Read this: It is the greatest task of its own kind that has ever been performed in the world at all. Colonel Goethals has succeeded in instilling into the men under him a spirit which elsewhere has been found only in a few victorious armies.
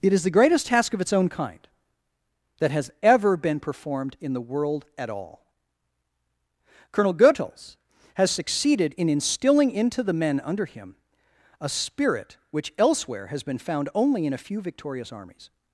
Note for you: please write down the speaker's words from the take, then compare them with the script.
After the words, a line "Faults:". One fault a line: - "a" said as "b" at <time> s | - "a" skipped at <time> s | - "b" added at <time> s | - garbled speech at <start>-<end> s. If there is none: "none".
It is the greatest task of its own kind that has ever been performed in the world at all. Colonel Goethals has succeeded in instilling into the men under him a spirit which elsewhere has been found only in a few victorious armies.
Faults:
none